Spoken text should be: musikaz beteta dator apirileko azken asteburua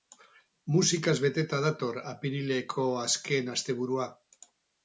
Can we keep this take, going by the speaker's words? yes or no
yes